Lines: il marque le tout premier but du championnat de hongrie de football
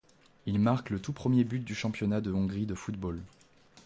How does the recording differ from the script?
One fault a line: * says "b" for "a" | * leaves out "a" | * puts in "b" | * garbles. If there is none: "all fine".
all fine